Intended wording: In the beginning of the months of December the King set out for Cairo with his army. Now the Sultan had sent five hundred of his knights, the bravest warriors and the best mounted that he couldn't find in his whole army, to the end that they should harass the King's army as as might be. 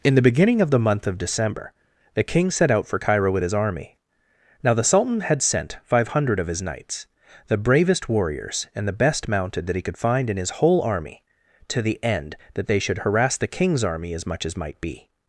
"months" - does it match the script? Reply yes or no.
no